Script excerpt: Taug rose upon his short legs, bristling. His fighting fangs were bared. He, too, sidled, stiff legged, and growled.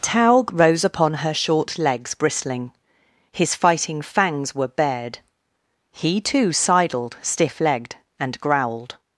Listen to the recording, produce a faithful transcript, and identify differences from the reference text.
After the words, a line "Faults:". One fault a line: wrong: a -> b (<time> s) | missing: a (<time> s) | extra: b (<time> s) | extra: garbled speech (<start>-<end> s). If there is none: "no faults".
Taug rose upon her short legs, bristling. His fighting fangs were bared. He, too, sidled, stiff legged, and growled.
Faults:
wrong: his -> her (1.1 s)